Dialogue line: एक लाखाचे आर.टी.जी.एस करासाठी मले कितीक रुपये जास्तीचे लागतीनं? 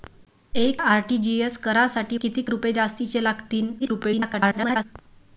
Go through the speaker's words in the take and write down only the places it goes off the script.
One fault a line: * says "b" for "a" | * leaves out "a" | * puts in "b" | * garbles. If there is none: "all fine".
* leaves out "लाखाचे"
* leaves out "मले"
* garbles